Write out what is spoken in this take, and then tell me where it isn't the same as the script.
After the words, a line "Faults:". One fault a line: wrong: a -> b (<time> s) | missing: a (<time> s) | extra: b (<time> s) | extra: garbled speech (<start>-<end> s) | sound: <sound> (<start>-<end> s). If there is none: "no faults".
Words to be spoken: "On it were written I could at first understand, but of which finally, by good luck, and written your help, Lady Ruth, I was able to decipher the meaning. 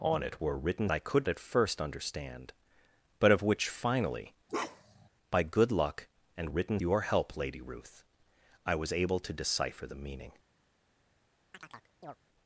"On it were written I could at first understand, but of which finally, by good luck, and written your help, Lady Ruth, I was able to decipher the meaning.
Faults:
sound: bark (4.5-5.1 s)
sound: chirp (11.5-12.2 s)